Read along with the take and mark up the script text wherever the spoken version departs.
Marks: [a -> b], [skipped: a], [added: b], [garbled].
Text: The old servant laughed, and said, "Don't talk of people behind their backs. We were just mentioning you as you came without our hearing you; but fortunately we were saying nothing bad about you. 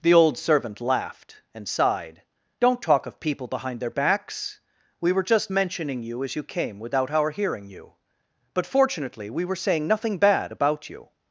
The old servant laughed, and [said, -> sighed] "Don't talk of people behind their backs. We were just mentioning you as you came without our hearing you; but fortunately we were saying nothing bad about you.